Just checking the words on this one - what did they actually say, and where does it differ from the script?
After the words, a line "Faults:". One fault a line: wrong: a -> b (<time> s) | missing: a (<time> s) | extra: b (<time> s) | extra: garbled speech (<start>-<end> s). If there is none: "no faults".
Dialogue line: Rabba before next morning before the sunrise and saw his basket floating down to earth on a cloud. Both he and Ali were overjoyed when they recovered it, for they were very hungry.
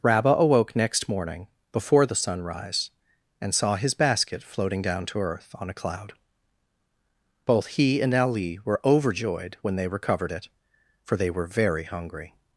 Rabba awoke next morning before the sunrise and saw his basket floating down to earth on a cloud. Both he and Ali were overjoyed when they recovered it, for they were very hungry.
Faults:
wrong: before -> awoke (0.3 s)